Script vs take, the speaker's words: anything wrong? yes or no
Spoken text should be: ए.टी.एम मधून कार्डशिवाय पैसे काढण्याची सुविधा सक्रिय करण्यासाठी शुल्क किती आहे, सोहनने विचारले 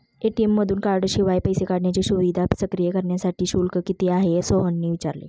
no